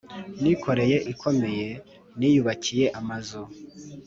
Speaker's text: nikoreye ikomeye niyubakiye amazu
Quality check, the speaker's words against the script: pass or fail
pass